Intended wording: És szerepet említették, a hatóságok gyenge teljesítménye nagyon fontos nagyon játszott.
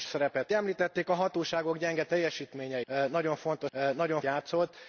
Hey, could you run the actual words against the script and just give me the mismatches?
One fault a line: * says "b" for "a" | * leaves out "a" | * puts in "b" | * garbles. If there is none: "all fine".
all fine